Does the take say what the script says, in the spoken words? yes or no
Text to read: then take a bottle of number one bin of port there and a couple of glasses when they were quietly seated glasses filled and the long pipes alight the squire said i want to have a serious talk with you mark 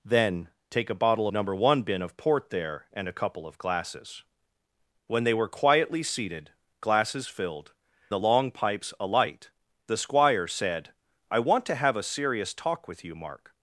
no